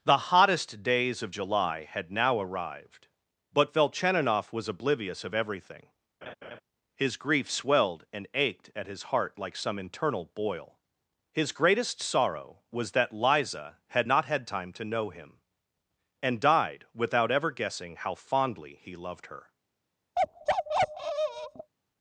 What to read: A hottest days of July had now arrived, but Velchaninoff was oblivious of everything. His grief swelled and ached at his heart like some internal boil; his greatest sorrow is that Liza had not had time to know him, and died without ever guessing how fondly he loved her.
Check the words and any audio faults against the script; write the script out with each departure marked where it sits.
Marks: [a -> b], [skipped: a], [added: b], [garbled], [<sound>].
[A -> The] hottest days of July had now arrived, but Velchaninoff was oblivious of everything. [laugh] His grief swelled and ached at his heart like some internal boil; his greatest sorrow [is -> was] that Liza had not had time to know him, and died without ever guessing how fondly he loved her. [bark]